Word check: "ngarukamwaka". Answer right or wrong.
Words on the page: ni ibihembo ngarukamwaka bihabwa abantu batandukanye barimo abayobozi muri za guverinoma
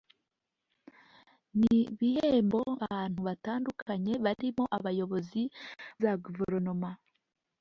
wrong